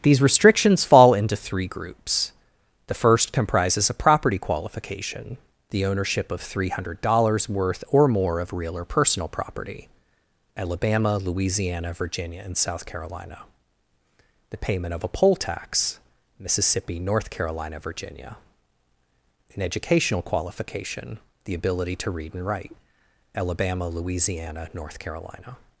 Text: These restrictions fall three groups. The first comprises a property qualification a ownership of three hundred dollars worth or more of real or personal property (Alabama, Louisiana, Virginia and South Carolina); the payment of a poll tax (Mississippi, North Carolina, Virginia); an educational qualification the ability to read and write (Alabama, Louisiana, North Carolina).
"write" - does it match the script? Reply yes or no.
yes